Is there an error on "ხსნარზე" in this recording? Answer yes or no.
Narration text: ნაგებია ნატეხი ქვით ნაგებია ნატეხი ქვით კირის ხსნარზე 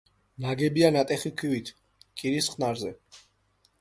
no